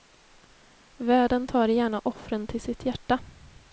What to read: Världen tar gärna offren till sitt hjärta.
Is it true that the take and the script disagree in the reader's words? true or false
false